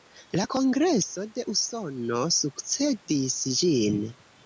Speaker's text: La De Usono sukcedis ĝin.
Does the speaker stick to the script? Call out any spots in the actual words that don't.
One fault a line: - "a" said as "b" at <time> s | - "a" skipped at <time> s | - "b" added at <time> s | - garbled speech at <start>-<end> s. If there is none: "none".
- "Kongreso" added at 0.5 s